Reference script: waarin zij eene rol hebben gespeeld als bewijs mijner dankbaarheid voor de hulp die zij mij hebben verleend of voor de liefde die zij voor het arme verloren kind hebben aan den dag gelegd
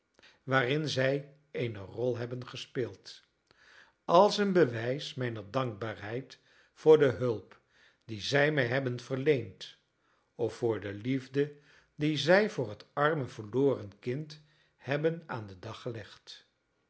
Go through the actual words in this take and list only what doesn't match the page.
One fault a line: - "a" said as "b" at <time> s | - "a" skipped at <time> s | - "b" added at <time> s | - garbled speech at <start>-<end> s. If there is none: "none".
- "een" added at 4.4 s